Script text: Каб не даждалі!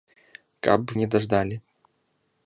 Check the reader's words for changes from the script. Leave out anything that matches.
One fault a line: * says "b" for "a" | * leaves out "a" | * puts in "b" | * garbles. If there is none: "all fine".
all fine